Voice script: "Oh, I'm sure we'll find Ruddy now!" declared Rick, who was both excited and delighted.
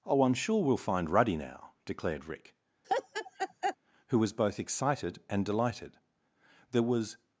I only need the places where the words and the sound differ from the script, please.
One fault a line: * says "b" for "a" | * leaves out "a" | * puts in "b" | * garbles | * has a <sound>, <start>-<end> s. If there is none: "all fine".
* has a laugh, 2.8-3.8 s
* puts in "There was"